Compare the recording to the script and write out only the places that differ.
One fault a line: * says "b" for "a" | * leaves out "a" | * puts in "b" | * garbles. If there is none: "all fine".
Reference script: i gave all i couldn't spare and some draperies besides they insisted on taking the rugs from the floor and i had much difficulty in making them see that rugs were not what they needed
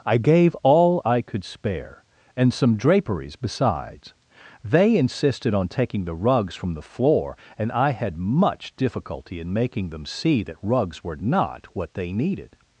* says "could" for "couldn't"